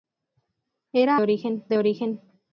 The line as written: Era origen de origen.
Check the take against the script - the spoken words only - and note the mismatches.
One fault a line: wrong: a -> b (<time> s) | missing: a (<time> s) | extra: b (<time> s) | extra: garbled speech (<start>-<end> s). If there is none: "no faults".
no faults